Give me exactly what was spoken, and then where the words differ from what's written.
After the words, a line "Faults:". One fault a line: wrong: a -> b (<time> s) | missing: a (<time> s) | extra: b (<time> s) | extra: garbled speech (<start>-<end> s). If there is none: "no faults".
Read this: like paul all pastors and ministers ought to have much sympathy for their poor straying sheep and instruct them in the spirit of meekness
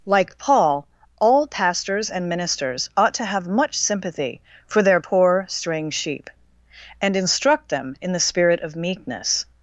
like paul all pastors and ministers ought to have much sympathy for their poor straying sheep and instruct them in the spirit of meekness
Faults:
no faults